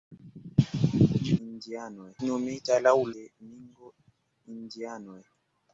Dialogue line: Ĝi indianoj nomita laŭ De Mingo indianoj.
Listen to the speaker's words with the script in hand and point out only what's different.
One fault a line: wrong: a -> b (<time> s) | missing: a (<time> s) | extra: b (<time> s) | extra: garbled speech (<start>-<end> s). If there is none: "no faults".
no faults